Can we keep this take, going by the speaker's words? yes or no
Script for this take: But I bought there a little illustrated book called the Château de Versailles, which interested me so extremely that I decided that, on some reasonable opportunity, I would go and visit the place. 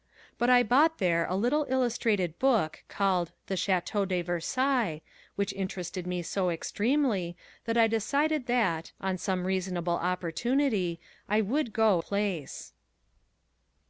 no